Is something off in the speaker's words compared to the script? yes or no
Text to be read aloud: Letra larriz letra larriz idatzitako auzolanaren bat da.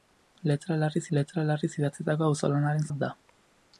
no